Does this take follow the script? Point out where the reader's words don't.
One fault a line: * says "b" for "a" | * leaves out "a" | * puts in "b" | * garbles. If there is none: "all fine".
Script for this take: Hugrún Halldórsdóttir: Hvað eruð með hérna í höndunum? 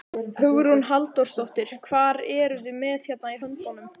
* puts in "þið"